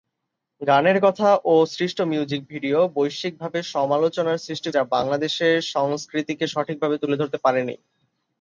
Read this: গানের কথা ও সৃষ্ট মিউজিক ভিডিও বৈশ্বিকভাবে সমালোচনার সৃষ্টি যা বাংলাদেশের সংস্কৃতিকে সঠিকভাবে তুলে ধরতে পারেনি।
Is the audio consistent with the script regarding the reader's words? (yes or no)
yes